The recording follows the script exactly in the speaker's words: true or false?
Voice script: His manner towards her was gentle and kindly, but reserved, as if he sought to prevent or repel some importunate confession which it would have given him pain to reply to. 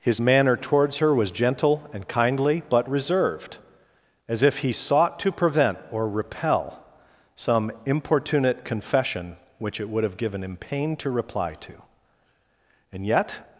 false